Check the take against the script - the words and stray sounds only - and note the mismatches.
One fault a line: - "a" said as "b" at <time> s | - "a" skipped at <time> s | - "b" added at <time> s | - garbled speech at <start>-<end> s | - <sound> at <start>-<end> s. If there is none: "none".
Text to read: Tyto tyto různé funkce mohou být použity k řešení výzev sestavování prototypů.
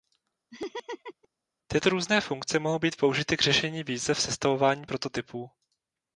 - laugh at 0.5-1.3 s
- "tyto" skipped at 1.9 s